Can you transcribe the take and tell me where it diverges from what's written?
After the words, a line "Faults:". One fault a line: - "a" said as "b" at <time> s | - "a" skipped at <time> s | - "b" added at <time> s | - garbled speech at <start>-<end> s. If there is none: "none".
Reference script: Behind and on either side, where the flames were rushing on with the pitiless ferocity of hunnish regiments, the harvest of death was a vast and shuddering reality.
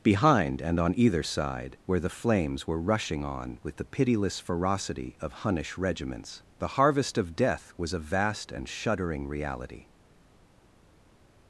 Behind and on either side, where the flames were rushing on with the pitiless ferocity of hunnish regiments, the harvest of death was a vast and shuddering reality.
Faults:
none